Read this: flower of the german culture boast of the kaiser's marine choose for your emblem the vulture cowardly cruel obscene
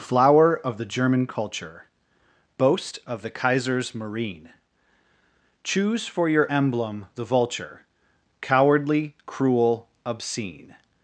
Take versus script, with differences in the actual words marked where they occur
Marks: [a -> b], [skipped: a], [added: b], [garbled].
flower of the german culture boast of the kaiser's marine choose for your emblem the vulture cowardly cruel obscene